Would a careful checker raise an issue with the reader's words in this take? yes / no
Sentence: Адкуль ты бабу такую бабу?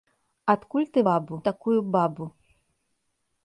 no